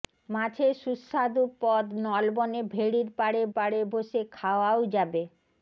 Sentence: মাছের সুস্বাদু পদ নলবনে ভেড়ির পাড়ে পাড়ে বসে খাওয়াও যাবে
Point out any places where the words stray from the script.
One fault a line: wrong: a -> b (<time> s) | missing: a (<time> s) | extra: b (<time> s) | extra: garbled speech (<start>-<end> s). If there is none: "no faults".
no faults